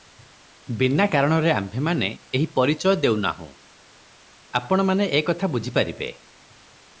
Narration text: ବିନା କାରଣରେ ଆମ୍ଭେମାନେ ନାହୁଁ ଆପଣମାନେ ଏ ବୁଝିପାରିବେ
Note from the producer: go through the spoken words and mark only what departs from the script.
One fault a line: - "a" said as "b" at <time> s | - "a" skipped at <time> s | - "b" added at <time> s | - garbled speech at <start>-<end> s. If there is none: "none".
- "ଏହି ପରିଚୟ ଦେଉ" added at 2.3 s
- "କଥା" added at 5.2 s